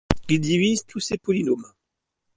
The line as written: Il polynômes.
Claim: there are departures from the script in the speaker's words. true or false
true